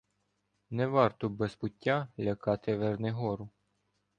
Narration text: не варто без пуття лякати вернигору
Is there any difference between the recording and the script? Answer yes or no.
no